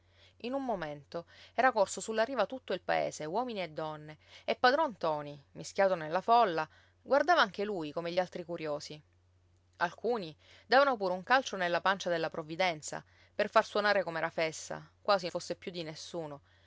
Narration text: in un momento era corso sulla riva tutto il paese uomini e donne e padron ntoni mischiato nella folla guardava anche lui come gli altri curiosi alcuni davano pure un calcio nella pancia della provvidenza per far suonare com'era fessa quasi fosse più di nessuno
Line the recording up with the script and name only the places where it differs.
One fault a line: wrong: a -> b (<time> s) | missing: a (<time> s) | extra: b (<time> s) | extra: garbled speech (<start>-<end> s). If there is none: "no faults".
no faults